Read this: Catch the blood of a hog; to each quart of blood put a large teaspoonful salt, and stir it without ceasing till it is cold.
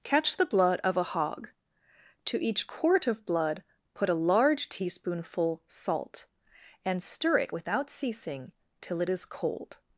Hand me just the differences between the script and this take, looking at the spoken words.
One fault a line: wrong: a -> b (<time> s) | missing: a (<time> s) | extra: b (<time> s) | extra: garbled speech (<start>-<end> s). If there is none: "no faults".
no faults